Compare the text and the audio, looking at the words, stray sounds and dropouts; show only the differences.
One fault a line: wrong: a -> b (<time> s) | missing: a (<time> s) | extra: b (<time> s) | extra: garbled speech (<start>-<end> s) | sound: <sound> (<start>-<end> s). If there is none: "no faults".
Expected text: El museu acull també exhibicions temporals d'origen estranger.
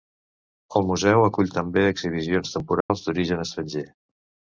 sound: dropout (2.8-2.9 s)